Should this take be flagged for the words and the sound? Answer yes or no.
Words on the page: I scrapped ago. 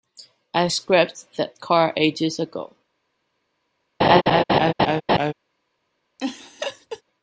yes